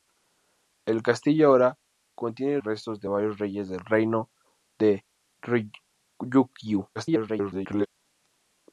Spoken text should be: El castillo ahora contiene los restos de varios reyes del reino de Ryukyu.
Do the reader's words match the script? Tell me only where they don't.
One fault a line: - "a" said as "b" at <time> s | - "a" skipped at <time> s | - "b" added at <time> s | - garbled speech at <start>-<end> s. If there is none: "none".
- "los" skipped at 2.6 s
- garbled speech at 7.0-7.9 s